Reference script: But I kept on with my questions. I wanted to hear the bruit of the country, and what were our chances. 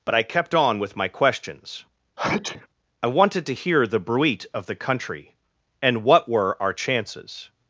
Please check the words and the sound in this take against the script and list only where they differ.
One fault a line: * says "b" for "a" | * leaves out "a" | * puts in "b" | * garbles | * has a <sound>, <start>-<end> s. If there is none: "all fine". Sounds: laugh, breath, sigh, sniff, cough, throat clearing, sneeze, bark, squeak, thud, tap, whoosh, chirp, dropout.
* has a sneeze, 2.2-2.7 s